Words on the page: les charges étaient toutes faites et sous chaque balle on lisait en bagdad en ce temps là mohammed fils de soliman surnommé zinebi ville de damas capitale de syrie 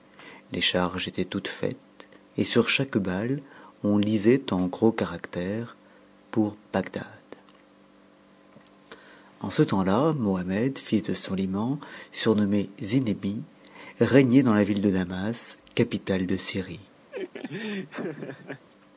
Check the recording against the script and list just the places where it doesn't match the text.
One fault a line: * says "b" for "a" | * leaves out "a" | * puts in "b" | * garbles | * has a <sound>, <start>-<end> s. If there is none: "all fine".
* says "sur" for "sous"
* puts in "gros caractères pour"
* puts in "régnait dans la"
* has a laugh, 17.1-18.7 s